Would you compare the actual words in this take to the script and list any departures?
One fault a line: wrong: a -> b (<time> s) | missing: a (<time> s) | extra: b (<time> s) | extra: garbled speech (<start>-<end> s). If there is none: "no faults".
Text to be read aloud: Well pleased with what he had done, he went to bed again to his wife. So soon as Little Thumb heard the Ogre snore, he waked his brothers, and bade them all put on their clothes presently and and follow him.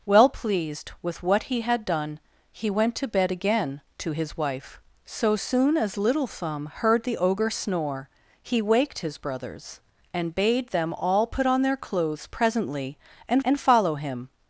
no faults